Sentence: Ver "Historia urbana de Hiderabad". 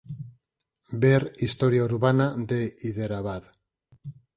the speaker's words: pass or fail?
pass